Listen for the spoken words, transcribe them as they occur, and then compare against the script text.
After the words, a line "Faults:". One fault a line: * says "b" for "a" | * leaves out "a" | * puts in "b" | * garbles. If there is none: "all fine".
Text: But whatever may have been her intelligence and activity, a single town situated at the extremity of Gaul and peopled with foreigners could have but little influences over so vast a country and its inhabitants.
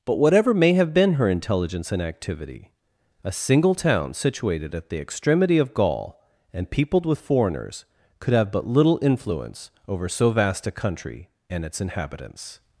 But whatever may have been her intelligence and activity, a single town situated at the extremity of Gaul and peopled with foreigners could have but little influence over so vast a country and its inhabitants.
Faults:
* says "influence" for "influences"